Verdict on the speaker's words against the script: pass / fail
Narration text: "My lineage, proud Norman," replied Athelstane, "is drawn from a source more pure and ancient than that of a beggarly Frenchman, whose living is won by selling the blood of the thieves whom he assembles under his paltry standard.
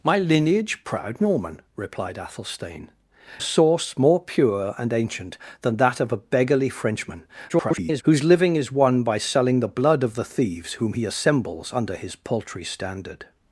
fail